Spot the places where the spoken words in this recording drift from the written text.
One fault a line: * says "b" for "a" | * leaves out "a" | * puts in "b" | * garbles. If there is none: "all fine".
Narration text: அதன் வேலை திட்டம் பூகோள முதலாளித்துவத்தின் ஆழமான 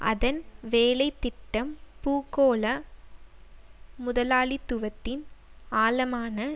all fine